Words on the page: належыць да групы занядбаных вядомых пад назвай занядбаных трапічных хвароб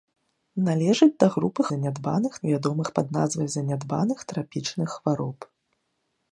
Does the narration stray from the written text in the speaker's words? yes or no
no